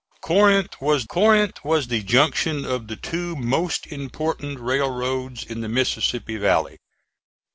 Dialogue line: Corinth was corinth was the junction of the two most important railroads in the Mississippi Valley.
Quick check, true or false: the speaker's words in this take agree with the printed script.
true